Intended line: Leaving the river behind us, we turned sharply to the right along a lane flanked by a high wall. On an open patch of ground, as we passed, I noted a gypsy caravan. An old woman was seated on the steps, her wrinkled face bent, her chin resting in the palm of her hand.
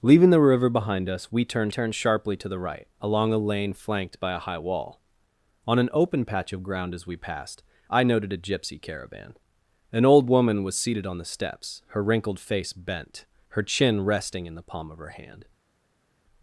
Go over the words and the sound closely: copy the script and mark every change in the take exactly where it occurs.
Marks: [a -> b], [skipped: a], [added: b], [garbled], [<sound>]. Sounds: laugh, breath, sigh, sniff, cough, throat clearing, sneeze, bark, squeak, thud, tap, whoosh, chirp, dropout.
Leaving the river behind us, we turned [added: turned] sharply to the right along a lane flanked by a high wall. On an open patch of ground, as we passed, I noted a gypsy caravan. An old woman was seated on the steps, her wrinkled face bent, her chin resting in the palm of her hand.